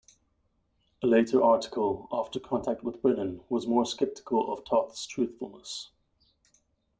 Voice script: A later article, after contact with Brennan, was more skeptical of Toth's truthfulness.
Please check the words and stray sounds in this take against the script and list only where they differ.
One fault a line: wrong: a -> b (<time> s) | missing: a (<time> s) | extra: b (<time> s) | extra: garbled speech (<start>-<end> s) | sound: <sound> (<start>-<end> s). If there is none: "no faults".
no faults